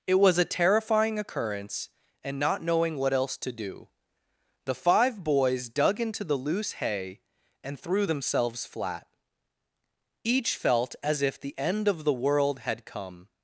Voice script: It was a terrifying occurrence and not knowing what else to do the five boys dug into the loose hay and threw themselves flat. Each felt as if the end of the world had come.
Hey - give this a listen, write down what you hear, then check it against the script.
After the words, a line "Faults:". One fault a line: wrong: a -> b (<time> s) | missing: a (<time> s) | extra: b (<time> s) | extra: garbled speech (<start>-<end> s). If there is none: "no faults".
It was a terrifying occurrence and not knowing what else to do the five boys dug into the loose hay and threw themselves flat. Each felt as if the end of the world had come.
Faults:
no faults